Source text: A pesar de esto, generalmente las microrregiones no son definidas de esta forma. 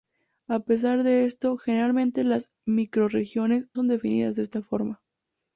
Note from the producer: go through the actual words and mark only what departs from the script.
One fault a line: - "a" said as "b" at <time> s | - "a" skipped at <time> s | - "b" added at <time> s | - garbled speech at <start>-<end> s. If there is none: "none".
- "no" skipped at 3.7 s